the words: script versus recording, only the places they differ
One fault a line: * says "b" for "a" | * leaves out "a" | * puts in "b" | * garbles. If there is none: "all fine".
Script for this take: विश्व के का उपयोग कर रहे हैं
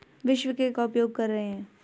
all fine